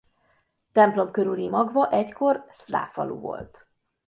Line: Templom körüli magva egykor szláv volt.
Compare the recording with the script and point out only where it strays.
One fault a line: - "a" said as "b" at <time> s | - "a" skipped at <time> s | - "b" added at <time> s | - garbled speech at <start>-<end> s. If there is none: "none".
- "falu" added at 2.9 s